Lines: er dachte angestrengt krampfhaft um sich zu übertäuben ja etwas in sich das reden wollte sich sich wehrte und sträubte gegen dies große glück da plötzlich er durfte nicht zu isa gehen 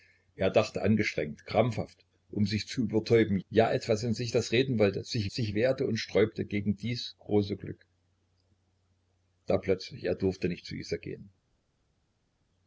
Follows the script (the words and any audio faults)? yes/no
yes